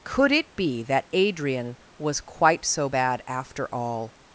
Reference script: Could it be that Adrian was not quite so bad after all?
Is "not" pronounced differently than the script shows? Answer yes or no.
yes